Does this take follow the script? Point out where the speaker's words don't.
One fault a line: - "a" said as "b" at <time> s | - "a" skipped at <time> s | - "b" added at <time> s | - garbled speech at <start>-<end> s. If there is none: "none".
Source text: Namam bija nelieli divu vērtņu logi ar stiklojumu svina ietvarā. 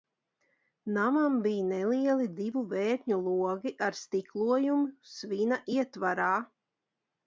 none